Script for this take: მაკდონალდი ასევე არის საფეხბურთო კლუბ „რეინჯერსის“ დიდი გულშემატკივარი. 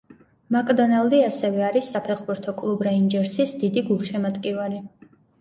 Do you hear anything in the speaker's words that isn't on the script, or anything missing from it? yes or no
no